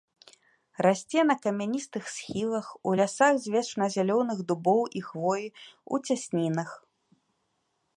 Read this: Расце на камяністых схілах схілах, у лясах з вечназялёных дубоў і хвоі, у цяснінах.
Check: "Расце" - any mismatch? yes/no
no